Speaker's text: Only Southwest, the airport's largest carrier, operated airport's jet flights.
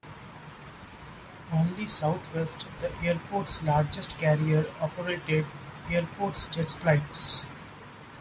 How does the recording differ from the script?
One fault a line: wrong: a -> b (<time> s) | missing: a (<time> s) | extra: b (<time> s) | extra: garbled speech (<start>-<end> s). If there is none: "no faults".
no faults